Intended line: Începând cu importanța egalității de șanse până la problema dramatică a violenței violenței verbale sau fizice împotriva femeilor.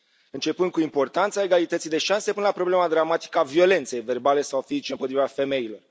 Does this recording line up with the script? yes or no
no